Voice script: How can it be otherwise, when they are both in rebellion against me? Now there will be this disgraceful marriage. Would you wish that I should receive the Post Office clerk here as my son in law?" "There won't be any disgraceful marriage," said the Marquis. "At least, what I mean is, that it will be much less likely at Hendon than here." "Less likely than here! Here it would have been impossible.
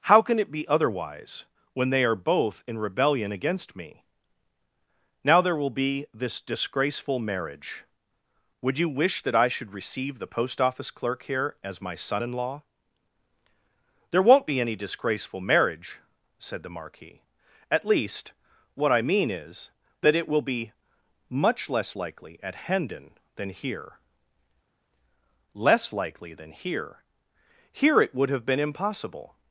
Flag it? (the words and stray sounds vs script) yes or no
no